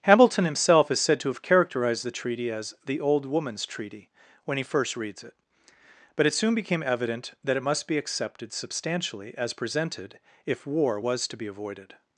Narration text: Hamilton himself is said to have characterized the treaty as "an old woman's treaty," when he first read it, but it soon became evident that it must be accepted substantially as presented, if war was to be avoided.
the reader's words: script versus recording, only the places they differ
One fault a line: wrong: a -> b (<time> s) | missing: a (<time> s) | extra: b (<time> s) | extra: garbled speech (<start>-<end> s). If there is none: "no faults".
wrong: an -> the (2.9 s)
wrong: read -> reads (5.0 s)